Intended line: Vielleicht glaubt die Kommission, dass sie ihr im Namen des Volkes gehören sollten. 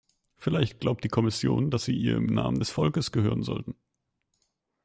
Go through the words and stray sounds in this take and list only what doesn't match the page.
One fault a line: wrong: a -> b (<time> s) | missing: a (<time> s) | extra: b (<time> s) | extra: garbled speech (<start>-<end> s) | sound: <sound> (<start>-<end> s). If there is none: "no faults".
no faults